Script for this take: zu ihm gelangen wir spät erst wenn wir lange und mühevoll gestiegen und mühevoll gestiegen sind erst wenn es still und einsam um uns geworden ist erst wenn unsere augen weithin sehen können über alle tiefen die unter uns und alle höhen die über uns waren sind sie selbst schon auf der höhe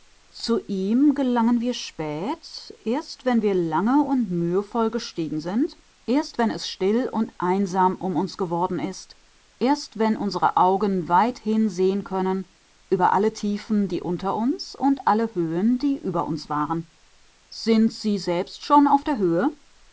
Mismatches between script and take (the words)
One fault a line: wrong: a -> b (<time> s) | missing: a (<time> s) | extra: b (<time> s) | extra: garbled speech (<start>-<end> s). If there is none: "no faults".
missing: und mühevoll gestiegen (5.4 s)